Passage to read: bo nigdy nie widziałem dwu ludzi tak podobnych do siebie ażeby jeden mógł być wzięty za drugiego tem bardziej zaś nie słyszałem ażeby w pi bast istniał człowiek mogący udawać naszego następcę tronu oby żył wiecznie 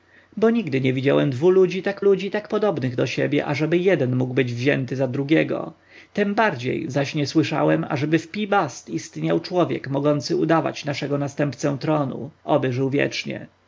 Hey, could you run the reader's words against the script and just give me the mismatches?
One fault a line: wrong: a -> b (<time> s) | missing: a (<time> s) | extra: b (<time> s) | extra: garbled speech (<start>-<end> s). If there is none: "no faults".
extra: ludzi tak (2.0 s)